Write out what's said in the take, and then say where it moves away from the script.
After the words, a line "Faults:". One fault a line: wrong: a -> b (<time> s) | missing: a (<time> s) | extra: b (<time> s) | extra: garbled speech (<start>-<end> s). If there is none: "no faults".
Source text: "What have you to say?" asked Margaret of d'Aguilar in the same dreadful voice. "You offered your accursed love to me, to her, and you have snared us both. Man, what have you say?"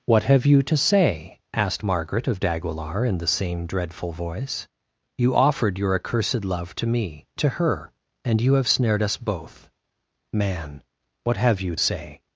"What have you to say?" asked Margaret of d'Aguilar in the same dreadful voice. "You offered your accursed love to me, to her, and you have snared us both. Man, what have you say?"
Faults:
no faults